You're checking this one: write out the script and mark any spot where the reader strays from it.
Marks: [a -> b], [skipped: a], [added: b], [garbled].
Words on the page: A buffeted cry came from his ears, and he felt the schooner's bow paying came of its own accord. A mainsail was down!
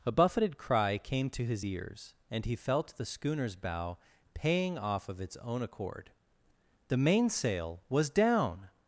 A buffeted cry came [from -> to] his ears, and he felt the schooner's bow paying [came -> off] of its own accord. [A -> The] mainsail was down!